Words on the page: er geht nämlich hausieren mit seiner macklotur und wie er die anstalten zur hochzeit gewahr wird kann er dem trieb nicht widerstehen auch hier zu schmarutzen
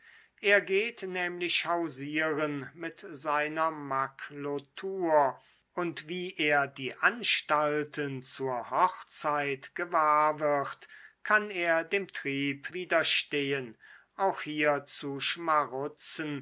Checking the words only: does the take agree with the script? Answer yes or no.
no